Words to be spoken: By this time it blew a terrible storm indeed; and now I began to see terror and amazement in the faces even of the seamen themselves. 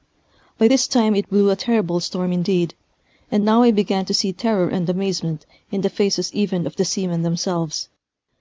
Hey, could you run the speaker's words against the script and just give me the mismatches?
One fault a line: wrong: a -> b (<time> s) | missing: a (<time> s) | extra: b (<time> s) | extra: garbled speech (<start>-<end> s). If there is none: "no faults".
no faults